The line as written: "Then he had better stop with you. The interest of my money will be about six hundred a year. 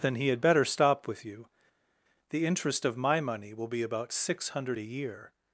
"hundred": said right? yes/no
yes